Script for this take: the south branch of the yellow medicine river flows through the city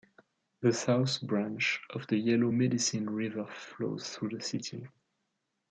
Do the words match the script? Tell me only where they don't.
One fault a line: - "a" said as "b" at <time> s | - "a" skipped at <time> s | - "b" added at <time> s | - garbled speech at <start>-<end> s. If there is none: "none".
none